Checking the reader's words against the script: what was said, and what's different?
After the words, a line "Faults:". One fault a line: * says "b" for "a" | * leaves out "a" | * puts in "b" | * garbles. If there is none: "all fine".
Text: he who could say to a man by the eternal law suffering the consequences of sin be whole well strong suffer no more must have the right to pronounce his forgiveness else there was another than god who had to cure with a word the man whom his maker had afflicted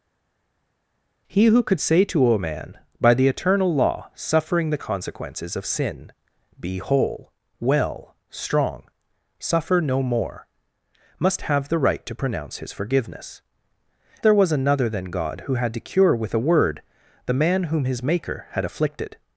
he who could say to a man by the eternal law suffering the consequences of sin be whole well strong suffer no more must have the right to pronounce his forgiveness there was another than god who had to cure with a word the man whom his maker had afflicted
Faults:
* leaves out "else"